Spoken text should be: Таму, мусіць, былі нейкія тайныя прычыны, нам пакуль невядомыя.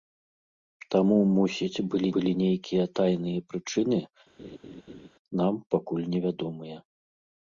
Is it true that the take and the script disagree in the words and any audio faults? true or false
true